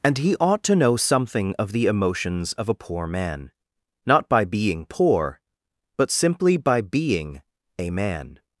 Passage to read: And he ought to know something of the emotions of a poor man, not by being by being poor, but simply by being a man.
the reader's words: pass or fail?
fail